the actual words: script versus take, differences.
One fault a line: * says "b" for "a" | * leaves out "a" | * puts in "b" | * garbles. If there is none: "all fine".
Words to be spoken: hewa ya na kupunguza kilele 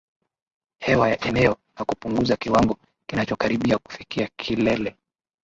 * puts in "eneo"
* puts in "kiwango kinachokaribia kufikia"